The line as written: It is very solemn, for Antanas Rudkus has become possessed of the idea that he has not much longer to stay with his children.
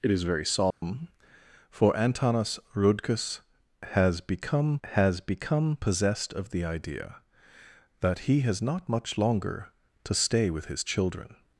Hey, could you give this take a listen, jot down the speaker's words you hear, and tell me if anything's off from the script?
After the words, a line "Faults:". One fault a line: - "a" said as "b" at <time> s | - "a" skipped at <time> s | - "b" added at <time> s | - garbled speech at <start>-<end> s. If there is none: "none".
It is very solemn, for Antanas Rudkus has become has become possessed of the idea that he has not much longer to stay with his children.
Faults:
- "has become" added at 4.8 s